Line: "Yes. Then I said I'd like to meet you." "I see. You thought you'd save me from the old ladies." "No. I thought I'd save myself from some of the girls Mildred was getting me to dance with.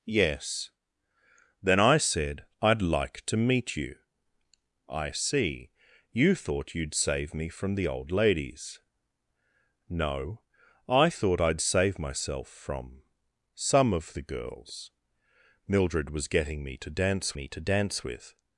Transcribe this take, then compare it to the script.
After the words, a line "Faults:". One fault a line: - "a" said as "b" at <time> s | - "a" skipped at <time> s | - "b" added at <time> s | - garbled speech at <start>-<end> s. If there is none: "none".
"Yes. Then I said I'd like to meet you." "I see. You thought you'd save me from the old ladies." "No. I thought I'd save myself from some of the girls Mildred was getting me to dance me to dance with.
Faults:
- "me to dance" added at 17.3 s